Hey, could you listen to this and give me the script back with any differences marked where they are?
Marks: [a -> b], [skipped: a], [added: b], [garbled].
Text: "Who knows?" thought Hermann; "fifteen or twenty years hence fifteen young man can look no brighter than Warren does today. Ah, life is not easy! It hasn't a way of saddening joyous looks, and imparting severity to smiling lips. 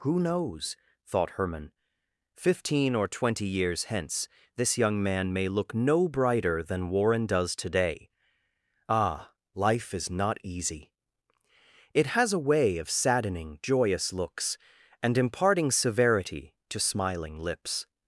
"Who knows?" thought Hermann; "fifteen or twenty years hence [fifteen -> this] young man [can -> may] look no brighter than Warren does today. Ah, life is not easy! It [hasn't -> has] a way of saddening joyous looks, and imparting severity to smiling lips.